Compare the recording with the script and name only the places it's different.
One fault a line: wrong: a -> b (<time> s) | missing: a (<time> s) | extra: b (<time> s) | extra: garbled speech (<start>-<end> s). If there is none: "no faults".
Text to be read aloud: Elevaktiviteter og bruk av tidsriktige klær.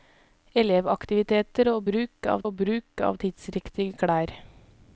extra: og bruk av (2.4 s)